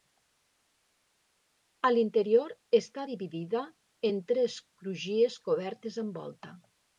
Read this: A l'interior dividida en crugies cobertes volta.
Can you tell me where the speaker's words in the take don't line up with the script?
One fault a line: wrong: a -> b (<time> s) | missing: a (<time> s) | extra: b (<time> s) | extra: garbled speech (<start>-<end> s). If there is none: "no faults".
extra: està (2.8 s)
extra: tres (4.3 s)
extra: amb (6.1 s)